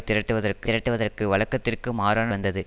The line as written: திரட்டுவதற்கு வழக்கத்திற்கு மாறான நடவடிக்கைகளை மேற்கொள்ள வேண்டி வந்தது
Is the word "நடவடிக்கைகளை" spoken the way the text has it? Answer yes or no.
no